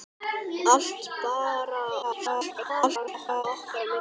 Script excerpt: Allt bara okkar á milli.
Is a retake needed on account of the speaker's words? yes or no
yes